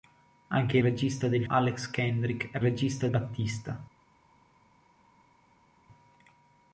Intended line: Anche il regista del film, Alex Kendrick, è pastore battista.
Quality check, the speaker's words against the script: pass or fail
fail